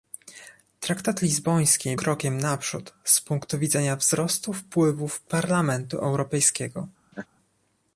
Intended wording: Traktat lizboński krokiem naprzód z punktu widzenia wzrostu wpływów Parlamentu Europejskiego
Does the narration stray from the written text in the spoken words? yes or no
no